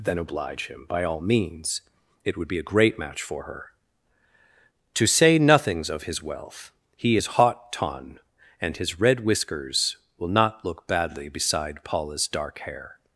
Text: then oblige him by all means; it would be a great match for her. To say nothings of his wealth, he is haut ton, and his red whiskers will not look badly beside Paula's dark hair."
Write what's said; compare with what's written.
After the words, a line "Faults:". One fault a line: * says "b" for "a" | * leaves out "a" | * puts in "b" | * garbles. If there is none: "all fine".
then oblige him by all means; it would be a great match for her. To say nothings of his wealth, he is haut ton, and his red whiskers will not look badly beside Paula's dark hair."
Faults:
all fine